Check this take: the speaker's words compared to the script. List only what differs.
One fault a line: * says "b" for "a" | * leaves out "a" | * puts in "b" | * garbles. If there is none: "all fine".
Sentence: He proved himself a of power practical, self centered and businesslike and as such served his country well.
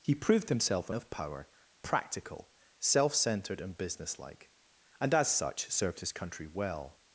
all fine